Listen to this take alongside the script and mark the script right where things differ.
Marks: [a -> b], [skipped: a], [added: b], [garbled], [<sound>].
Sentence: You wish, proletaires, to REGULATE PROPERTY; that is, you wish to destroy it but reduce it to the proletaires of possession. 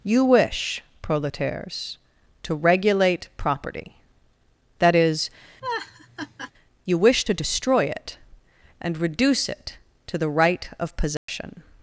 You wish, proletaires, to REGULATE PROPERTY; that is, [laugh] you wish to destroy it [but -> and] reduce it to the [proletaires -> right] of possession. [dropout]